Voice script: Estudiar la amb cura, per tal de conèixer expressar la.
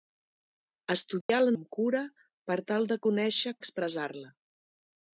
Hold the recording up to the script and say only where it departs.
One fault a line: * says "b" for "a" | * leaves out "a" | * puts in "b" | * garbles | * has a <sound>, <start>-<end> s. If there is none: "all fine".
* has a dropout, 1.2-1.3 s